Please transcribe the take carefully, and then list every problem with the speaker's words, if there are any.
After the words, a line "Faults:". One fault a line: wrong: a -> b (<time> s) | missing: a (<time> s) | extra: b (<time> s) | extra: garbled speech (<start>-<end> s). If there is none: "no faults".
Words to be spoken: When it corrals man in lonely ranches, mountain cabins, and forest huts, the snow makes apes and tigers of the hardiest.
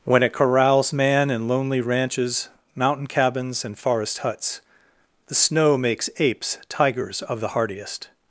When it corrals man in lonely ranches, mountain cabins, and forest huts, the snow makes apes tigers of the hardiest.
Faults:
missing: and (6.6 s)